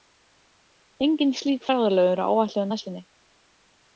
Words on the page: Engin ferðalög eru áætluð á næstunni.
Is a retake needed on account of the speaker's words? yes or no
yes